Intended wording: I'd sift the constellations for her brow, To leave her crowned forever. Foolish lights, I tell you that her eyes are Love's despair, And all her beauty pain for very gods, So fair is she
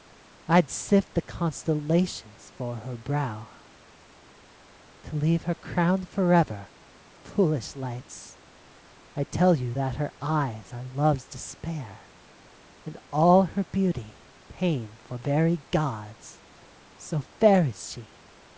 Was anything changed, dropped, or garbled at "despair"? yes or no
no